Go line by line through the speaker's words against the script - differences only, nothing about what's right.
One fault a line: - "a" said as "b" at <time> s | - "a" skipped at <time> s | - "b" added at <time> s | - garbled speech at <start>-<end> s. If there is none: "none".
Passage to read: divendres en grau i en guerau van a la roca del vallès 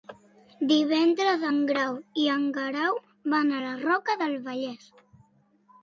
none